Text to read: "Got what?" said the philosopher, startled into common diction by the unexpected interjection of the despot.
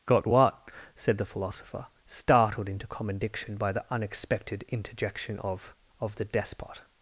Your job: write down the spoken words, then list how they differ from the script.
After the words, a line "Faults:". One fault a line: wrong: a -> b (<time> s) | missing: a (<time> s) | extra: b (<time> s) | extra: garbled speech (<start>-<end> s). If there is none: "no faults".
"Got what?" said the philosopher, startled into common diction by the unexpected interjection of of the despot.
Faults:
extra: of (6.0 s)